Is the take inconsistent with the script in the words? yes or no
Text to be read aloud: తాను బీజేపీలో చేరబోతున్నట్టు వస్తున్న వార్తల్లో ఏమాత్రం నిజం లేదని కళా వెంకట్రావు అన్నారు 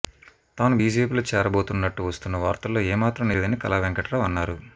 yes